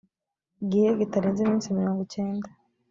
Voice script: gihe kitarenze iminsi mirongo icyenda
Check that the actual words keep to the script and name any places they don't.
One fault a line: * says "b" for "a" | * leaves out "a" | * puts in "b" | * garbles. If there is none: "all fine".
all fine